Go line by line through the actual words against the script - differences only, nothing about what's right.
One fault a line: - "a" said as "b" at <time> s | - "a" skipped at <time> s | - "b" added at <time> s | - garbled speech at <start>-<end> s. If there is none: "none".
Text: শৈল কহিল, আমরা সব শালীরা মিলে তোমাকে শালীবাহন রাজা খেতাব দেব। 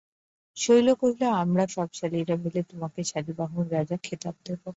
none